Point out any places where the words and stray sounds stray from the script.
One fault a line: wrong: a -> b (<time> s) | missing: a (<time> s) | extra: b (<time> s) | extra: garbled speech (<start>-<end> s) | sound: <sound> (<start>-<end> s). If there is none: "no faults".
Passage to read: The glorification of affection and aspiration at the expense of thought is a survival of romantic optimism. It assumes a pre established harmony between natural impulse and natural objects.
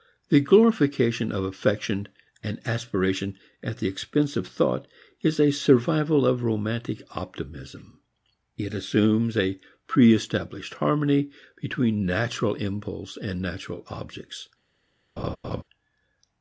sound: laugh (15.2-15.6 s)